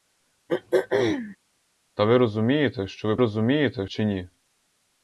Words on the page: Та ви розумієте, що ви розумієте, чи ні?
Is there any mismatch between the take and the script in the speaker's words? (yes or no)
no